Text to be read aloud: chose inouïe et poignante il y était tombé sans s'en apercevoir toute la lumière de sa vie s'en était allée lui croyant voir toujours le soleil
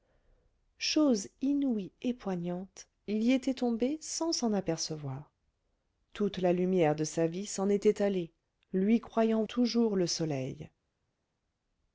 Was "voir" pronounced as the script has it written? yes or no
no